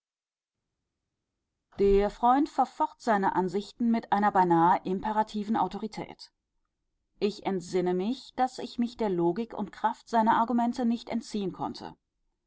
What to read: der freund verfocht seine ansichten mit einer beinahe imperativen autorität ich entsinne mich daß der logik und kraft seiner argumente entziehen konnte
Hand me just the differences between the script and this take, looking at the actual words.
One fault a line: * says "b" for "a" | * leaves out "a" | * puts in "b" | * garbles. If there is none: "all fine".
* puts in "ich mich"
* puts in "nicht"